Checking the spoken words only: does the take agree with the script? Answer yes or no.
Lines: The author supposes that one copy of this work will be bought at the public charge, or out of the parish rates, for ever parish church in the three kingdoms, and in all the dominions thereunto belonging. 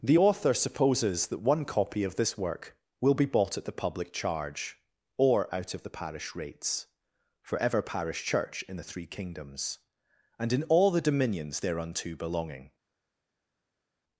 yes